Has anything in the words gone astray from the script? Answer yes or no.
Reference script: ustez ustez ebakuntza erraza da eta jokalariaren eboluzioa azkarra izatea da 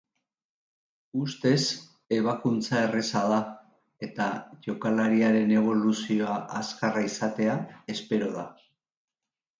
yes